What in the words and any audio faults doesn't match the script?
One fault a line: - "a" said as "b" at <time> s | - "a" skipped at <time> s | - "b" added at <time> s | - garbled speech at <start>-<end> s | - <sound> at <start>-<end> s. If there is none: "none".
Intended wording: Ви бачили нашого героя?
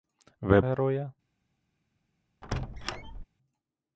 - "бачили нашого" skipped at 0.6 s
- squeak at 2.4-3.2 s